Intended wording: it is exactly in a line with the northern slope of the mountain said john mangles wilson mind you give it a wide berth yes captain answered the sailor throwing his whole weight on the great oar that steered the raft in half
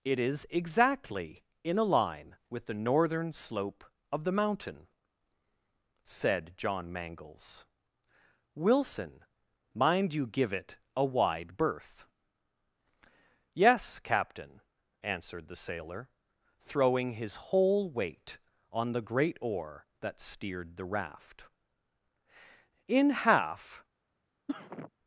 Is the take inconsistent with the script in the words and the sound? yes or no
yes